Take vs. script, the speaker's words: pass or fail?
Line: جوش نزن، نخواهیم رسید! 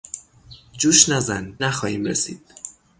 pass